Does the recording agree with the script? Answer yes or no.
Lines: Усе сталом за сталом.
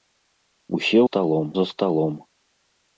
yes